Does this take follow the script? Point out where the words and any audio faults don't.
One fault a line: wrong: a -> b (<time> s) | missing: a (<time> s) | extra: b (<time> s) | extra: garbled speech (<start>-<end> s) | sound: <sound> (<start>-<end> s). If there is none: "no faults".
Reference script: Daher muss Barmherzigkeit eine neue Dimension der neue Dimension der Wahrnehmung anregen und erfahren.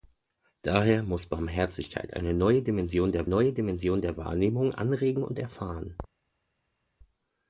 no faults